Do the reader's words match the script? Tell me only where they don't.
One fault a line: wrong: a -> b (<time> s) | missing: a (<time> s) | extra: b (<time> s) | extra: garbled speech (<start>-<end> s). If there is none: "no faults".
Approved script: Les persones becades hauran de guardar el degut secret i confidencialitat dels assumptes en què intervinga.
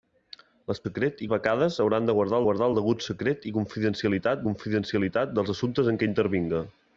wrong: persones -> secret (0.8 s)
extra: guardar (2.5 s)
extra: confidencialitat (4.5 s)